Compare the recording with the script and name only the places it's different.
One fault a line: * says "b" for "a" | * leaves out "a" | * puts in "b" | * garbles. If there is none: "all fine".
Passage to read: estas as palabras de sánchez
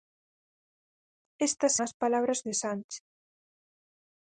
all fine